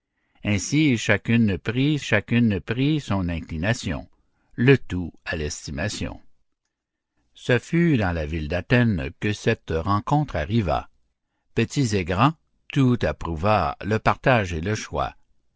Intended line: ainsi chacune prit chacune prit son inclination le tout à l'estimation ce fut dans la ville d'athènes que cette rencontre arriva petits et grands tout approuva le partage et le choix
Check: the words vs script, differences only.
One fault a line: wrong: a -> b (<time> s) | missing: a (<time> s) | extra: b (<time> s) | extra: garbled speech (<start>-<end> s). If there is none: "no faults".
no faults